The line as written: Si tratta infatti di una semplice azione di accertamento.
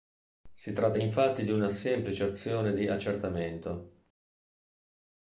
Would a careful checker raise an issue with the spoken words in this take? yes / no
no